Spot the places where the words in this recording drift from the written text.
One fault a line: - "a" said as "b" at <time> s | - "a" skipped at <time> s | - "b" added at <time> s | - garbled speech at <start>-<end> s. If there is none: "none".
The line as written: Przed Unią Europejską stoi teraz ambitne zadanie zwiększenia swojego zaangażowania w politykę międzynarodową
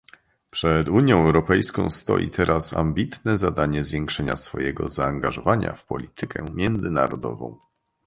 none